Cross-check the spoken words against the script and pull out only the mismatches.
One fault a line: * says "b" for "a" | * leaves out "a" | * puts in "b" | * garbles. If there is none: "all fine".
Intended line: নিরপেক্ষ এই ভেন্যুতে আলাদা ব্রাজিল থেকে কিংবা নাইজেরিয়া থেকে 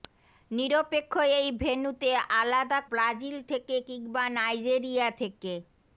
all fine